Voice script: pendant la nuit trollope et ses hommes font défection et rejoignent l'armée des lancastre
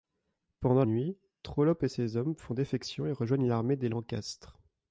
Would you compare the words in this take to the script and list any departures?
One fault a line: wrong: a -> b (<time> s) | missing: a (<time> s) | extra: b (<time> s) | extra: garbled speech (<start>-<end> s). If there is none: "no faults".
missing: la (0.8 s)